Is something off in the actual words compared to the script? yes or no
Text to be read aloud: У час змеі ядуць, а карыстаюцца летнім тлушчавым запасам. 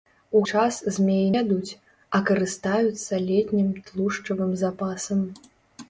no